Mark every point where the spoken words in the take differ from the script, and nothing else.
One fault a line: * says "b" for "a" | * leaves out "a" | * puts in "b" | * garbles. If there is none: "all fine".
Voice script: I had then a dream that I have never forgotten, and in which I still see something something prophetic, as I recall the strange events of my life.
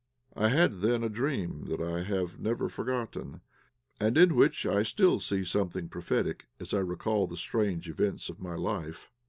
* leaves out "something"